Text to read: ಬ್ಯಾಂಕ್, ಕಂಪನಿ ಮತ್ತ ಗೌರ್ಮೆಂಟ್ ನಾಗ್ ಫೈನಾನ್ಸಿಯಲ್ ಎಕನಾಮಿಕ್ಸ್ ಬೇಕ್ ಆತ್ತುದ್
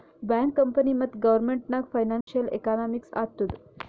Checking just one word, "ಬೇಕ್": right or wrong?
wrong